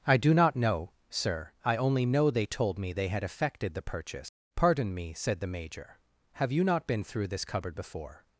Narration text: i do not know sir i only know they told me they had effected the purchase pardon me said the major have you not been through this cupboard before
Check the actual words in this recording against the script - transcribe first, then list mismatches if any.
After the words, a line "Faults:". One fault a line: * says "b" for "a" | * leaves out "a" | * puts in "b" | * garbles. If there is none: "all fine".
i do not know sir i only know they told me they had effected the purchase pardon me said the major have you not been through this cupboard before
Faults:
all fine